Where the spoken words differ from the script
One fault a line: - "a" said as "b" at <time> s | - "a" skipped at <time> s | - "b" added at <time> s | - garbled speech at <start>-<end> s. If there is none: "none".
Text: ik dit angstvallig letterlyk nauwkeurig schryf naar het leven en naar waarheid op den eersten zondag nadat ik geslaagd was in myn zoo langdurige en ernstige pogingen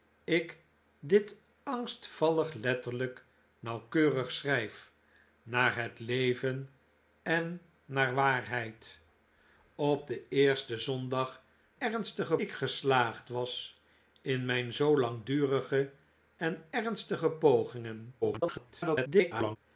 - "nadat" said as "ernstige" at 11.8 s
- garbled speech at 18.2-19.6 s